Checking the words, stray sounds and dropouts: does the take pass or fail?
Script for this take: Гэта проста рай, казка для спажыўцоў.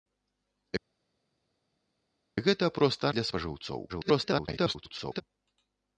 fail